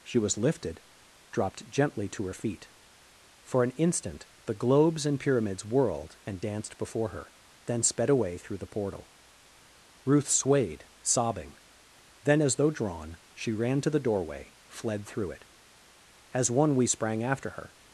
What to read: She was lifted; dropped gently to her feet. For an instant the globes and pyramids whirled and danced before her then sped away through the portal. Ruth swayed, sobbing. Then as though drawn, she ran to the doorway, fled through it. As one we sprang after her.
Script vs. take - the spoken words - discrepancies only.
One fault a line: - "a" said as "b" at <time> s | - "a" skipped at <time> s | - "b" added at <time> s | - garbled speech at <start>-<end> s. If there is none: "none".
none